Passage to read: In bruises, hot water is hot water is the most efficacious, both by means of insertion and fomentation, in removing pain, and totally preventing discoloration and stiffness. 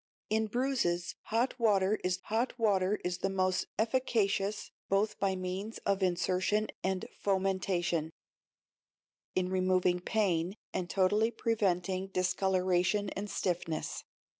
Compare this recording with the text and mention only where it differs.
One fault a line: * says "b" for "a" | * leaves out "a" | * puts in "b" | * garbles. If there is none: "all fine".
all fine